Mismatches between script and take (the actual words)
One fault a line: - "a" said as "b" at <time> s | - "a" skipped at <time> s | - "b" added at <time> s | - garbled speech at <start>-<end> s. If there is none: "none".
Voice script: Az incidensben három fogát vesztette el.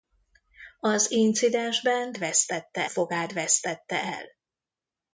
- "három" said as "vesztette" at 2.2 s